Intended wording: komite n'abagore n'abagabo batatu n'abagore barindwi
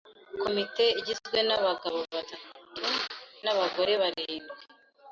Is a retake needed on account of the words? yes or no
yes